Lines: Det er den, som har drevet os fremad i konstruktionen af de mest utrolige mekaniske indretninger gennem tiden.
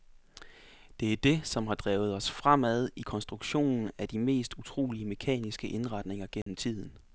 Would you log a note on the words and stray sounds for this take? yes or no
yes